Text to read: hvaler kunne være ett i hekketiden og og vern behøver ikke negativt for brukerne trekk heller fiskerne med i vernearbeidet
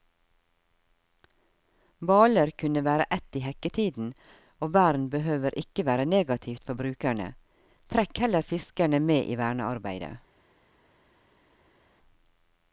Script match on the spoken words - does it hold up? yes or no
no